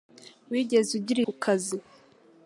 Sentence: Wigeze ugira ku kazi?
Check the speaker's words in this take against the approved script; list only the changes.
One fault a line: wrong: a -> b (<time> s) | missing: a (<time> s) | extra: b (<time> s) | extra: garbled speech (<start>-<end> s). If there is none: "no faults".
no faults